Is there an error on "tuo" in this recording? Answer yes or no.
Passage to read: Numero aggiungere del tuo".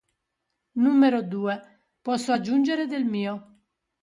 yes